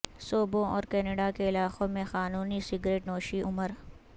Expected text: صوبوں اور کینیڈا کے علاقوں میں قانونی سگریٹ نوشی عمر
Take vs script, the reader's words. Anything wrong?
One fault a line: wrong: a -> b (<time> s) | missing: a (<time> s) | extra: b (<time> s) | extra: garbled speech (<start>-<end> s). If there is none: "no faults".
no faults